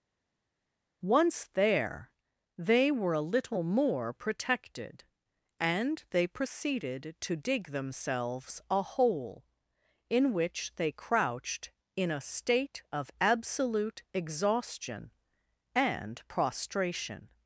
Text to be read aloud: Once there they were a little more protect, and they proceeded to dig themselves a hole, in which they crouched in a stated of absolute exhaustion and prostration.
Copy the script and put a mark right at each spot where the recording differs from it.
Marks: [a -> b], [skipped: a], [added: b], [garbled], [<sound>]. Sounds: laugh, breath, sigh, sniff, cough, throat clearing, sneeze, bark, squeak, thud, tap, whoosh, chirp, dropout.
Once there they were a little more [protect, -> protected] and they proceeded to dig themselves a hole, in which they crouched in a [stated -> state] of absolute exhaustion and prostration.